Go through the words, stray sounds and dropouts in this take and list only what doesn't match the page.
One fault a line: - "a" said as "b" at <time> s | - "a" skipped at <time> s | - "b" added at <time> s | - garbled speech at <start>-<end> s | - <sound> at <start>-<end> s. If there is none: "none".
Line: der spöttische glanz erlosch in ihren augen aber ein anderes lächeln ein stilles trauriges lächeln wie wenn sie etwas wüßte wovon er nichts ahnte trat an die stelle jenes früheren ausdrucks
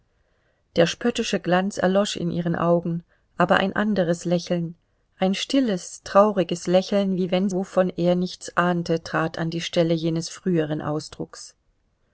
- "sie etwas wüßte" skipped at 7.5 s